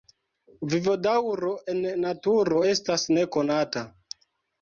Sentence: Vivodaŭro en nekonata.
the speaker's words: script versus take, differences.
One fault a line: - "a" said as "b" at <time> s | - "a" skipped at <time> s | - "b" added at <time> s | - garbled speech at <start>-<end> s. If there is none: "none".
- "naturo estas" added at 2.0 s